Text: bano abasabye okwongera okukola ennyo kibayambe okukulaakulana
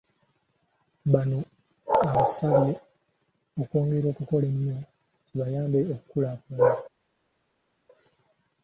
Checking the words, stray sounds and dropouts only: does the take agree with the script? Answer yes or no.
yes